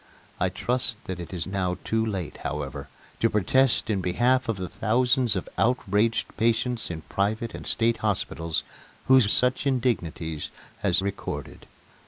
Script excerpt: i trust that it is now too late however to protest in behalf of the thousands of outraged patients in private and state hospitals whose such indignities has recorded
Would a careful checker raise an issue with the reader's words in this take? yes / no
no